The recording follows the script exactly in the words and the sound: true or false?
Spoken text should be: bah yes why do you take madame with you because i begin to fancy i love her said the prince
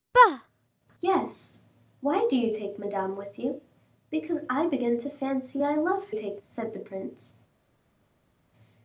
false